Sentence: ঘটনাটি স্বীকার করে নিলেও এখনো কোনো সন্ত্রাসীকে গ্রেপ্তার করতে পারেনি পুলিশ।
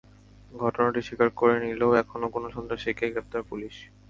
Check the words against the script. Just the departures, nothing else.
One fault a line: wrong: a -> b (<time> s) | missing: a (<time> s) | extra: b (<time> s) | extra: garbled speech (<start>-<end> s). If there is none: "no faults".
missing: করতে পারেনি (3.4 s)